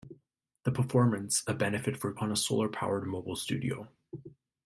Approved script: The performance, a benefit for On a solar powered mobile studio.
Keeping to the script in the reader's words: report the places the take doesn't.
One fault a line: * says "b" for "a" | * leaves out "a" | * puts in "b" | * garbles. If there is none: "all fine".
all fine